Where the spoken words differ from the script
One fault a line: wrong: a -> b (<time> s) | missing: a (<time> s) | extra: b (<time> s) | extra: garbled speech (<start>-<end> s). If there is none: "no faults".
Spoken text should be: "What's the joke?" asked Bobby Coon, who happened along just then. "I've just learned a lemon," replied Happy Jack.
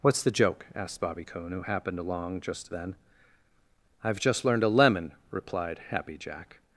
no faults